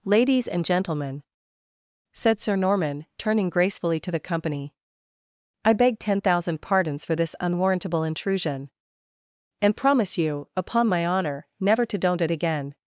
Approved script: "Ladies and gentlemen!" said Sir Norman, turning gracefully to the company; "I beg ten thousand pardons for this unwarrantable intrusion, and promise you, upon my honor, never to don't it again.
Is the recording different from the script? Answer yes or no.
no